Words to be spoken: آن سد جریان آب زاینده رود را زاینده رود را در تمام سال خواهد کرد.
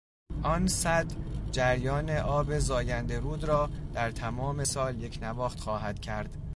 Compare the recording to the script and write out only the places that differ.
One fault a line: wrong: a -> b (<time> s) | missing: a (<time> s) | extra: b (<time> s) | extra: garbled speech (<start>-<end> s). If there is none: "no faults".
missing: زاینده رود را (3.7 s)
extra: یکنواخت (5.0 s)